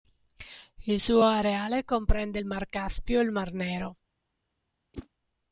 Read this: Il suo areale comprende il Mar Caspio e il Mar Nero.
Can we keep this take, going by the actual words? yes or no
yes